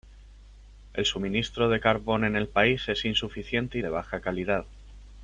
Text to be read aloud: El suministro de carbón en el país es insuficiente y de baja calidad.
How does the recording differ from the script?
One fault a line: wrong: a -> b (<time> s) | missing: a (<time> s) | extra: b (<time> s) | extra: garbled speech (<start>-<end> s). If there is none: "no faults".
no faults